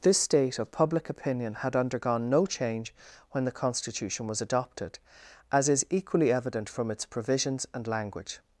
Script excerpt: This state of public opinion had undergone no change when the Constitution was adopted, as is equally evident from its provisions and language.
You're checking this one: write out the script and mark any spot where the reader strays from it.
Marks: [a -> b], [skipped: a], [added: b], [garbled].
This state of public opinion had undergone no change when the Constitution was adopted, as is equally evident from its provisions and language.